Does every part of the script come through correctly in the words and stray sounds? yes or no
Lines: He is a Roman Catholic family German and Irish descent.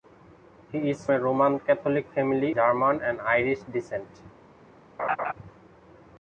no